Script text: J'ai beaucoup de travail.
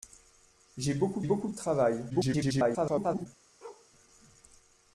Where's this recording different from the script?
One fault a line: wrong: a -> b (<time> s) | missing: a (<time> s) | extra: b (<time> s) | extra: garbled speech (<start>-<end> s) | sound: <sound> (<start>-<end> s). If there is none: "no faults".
extra: beaucoup (1.2 s)
extra: garbled speech (2.1-3.3 s)
sound: bark (3.6-3.9 s)